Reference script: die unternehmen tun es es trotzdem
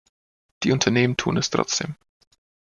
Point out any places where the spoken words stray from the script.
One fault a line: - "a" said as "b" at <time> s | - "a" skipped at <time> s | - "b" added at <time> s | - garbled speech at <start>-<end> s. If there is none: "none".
- "es" skipped at 1.5 s